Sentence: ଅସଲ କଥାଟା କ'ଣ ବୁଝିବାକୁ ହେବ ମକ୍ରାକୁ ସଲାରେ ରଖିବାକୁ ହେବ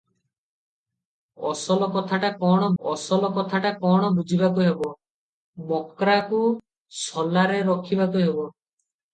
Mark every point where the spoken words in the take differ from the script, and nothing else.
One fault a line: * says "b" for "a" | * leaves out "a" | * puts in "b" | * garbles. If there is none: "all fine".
* puts in "ଅସଲ କଥାଟା କ'ଣ"